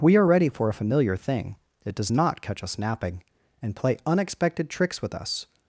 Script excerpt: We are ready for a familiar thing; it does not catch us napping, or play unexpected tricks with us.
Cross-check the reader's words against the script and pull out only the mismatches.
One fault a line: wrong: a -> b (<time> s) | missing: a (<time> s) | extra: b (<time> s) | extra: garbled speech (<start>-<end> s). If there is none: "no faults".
wrong: or -> and (3.6 s)